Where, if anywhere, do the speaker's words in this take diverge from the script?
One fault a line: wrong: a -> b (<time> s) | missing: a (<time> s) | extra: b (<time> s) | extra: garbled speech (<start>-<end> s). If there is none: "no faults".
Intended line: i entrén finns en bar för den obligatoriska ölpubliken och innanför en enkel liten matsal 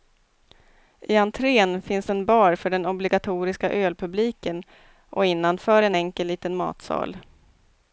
no faults